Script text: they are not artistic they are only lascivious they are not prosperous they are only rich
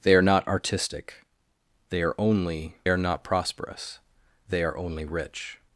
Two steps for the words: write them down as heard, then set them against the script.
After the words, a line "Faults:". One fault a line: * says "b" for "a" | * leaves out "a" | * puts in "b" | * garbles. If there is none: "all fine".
they are not artistic they are only are not prosperous they are only rich
Faults:
* leaves out "lascivious they"